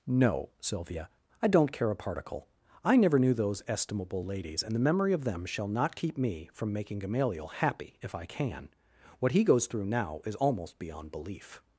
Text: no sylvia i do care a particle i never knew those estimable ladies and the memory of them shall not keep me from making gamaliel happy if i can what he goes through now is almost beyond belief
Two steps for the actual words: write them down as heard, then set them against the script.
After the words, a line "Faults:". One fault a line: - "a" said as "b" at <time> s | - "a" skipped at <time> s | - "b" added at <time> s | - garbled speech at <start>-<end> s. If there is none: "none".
no sylvia i don't care a particle i never knew those estimable ladies and the memory of them shall not keep me from making gamaliel happy if i can what he goes through now is almost beyond belief
Faults:
- "do" said as "don't" at 1.5 s